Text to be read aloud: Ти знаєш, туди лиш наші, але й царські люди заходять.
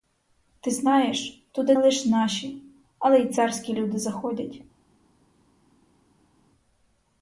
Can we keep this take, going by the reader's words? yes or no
yes